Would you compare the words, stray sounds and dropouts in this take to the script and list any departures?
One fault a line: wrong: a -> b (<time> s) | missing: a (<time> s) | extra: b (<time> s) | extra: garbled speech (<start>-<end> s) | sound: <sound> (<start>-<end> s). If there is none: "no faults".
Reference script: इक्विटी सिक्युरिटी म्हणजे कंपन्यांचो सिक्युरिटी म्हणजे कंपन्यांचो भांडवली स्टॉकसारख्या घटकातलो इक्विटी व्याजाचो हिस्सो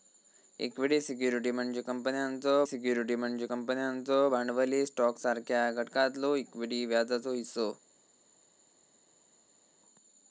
no faults